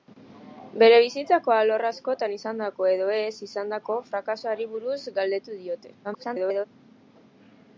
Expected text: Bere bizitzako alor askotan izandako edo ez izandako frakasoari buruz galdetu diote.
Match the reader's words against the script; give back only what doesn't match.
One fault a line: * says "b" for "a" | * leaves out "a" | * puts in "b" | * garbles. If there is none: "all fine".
* garbles